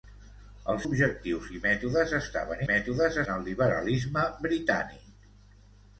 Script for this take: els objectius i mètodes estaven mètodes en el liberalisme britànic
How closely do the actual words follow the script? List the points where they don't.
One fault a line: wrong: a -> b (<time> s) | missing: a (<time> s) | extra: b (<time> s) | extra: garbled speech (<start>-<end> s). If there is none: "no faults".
no faults